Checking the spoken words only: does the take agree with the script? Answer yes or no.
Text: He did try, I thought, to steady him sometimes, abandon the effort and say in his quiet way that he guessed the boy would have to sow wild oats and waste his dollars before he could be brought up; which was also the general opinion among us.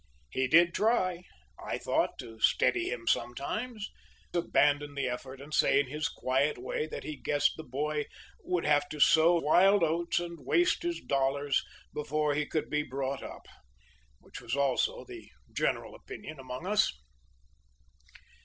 yes